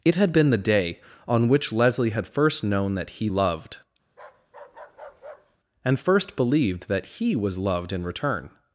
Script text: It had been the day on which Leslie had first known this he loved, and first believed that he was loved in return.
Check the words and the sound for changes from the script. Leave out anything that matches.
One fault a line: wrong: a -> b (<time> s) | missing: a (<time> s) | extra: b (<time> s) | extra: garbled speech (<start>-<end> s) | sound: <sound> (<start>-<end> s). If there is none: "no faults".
wrong: this -> that (3.0 s)
sound: bark (4.1-5.6 s)